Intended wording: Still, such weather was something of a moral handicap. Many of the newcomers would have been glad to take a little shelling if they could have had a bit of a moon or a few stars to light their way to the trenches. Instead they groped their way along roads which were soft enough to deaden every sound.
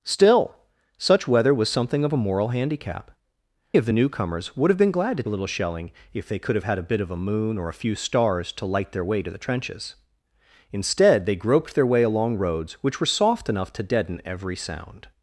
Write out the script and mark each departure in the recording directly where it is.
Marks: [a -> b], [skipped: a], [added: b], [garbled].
Still, such weather was something of a moral handicap. [skipped: Many] of the newcomers would have been glad to [skipped: take] a little shelling if they could have had a bit of a moon or a few stars to light their way to the trenches. Instead they groped their way along roads which were soft enough to deaden every sound.